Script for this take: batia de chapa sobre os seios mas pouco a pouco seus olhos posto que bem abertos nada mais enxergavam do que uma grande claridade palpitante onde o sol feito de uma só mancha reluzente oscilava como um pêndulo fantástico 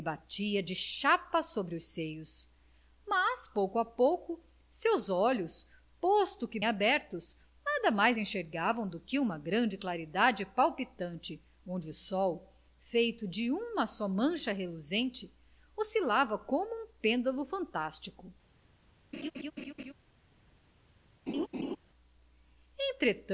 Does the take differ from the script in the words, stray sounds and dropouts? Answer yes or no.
yes